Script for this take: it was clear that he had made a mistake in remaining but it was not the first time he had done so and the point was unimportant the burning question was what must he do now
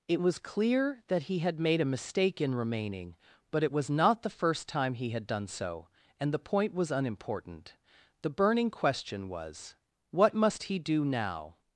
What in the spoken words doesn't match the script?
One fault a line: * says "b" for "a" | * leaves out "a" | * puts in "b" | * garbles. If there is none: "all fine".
all fine